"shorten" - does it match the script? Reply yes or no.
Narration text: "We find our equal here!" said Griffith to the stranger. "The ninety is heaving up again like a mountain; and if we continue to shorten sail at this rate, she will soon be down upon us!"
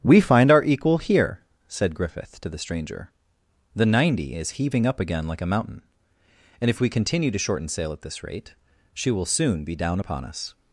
yes